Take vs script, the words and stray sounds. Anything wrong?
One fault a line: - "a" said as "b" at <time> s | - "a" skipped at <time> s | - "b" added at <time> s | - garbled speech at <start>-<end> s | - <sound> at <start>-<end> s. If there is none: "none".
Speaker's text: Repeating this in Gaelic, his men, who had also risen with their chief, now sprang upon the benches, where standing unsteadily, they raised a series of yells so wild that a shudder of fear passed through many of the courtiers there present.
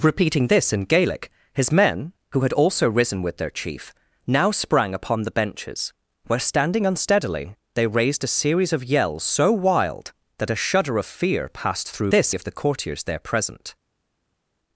- "many" said as "this" at 12.1 s